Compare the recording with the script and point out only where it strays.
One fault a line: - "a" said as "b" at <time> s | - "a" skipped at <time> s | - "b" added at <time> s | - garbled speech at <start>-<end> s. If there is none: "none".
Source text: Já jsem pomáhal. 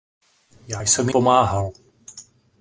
none